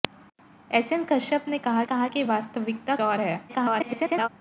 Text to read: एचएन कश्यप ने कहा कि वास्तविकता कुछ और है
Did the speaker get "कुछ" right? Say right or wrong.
wrong